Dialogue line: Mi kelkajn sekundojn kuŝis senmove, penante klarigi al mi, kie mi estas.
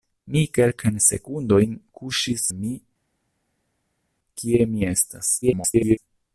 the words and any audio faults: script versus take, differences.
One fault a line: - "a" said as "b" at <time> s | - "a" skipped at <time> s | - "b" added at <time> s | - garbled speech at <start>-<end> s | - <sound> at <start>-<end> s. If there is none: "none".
- "senmove penante klarigi" skipped at 2.5 s
- garbled speech at 5.4-6.0 s